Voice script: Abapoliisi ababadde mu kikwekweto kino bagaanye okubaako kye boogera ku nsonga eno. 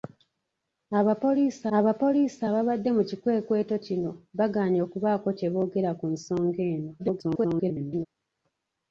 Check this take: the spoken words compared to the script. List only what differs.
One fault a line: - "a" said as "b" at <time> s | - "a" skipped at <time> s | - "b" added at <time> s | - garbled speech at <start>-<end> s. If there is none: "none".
- "abapoliisi" added at 1.8 s
- garbled speech at 7.0-8.1 s